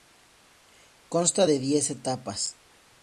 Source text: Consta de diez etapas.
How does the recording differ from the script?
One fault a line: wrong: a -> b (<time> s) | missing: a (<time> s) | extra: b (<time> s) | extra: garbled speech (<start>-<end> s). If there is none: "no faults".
no faults